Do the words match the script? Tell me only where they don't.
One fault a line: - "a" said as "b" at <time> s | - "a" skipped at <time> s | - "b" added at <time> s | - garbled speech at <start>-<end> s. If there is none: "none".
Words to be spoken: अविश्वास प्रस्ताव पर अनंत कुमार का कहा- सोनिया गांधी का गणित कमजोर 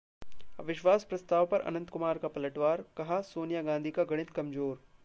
- "पलटवार" added at 2.3 s